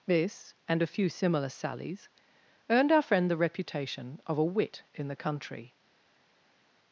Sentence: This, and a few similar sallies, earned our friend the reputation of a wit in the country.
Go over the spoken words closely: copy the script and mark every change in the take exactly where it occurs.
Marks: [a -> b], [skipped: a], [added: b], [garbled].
This, and a few similar sallies, earned our friend the reputation of a wit in the country.